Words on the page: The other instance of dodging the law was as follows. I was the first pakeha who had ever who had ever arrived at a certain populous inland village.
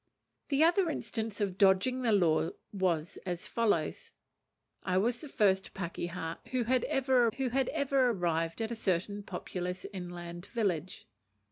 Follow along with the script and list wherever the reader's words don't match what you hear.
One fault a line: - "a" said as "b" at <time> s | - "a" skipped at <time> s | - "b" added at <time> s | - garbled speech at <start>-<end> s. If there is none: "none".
none